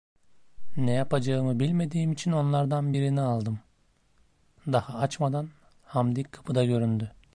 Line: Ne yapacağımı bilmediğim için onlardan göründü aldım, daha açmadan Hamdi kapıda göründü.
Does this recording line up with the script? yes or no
no